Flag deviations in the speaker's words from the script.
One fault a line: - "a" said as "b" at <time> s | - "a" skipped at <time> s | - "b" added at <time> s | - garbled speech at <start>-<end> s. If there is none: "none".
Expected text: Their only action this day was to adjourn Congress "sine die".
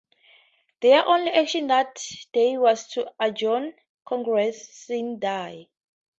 - "this" said as "that" at 1.7 s